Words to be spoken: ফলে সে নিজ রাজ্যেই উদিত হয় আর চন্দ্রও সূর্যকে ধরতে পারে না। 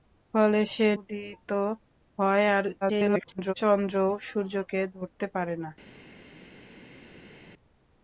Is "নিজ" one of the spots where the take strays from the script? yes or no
yes